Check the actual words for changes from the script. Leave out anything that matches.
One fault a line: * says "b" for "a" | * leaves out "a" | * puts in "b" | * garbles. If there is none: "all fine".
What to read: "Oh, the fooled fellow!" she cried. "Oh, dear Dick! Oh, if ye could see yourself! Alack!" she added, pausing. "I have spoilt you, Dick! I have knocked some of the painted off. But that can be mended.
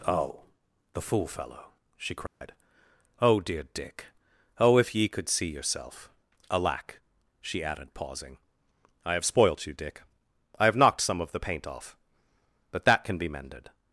* says "fool" for "fooled"
* says "paint" for "painted"